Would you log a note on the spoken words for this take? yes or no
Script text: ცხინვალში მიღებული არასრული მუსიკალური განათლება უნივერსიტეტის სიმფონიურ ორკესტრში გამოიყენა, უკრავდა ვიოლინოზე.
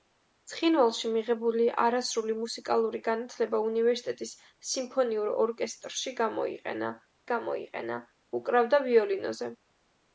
yes